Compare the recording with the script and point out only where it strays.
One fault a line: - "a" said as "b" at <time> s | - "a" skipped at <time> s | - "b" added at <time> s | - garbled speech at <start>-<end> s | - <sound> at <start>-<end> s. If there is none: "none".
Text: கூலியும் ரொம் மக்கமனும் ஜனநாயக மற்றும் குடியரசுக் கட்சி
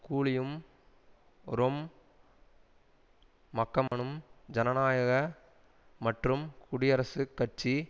- dropout at 3.9-3.9 s